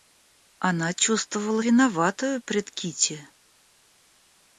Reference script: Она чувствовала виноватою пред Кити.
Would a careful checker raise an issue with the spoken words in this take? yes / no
no